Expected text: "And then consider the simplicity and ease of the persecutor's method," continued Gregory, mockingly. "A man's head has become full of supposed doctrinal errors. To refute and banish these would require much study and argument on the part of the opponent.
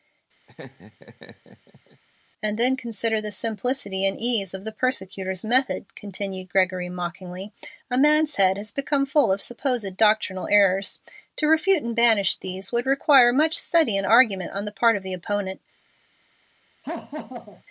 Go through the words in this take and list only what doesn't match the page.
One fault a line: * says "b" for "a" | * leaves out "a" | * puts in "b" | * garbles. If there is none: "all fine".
all fine